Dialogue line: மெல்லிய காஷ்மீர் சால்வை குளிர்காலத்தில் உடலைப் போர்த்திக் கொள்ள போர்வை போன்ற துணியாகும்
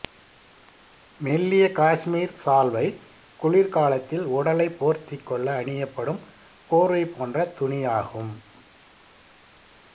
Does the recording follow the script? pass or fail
fail